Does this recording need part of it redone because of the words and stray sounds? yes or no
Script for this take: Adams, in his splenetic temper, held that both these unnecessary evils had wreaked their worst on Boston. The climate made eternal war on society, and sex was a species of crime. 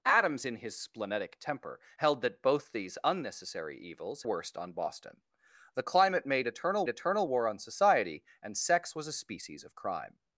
yes